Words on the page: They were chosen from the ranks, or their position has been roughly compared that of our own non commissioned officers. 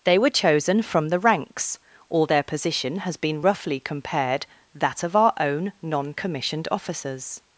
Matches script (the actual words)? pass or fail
pass